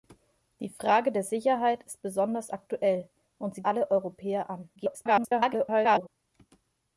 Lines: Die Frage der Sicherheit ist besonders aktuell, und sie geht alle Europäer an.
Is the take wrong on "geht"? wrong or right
wrong